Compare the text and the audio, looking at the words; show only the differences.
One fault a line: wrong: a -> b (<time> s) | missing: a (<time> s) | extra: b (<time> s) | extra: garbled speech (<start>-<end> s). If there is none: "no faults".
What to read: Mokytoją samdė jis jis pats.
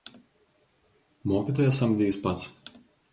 missing: jis (2.2 s)